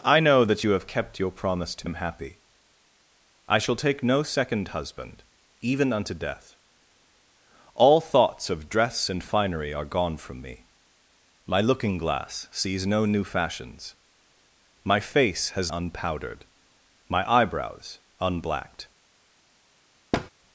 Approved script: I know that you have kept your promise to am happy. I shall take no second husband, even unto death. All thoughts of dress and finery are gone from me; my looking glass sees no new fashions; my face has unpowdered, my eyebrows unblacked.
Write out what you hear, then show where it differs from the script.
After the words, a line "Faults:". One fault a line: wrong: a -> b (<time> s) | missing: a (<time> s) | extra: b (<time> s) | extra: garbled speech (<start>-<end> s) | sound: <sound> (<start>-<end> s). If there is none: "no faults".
I know that you have kept your promise to am happy. I shall take no second husband, even unto death. All thoughts of dress and finery are gone from me; my looking glass sees no new fashions; my face has unpowdered, my eyebrows unblacked.
Faults:
sound: thud (20.1-20.3 s)